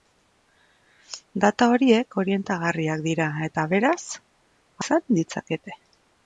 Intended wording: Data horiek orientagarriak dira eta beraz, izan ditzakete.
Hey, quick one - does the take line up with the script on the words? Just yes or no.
yes